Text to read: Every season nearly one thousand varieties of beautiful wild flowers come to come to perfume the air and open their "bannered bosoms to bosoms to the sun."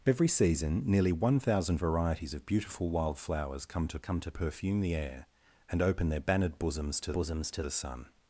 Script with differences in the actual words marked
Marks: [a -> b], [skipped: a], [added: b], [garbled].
Every season nearly one thousand varieties of beautiful wild flowers come to come to perfume the air and open their "bannered bosoms to bosoms to the sun."